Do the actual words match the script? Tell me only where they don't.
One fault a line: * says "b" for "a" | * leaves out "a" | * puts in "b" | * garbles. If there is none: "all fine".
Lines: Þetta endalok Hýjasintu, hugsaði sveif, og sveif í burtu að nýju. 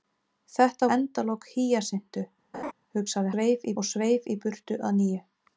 all fine